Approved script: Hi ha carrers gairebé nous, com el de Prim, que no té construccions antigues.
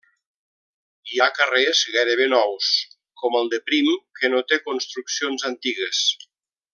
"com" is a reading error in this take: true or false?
false